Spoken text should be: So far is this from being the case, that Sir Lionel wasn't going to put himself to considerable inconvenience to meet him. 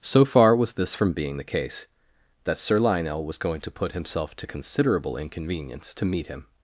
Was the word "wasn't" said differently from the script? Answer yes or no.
yes